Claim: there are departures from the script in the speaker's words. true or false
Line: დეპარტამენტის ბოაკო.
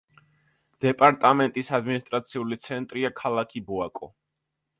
true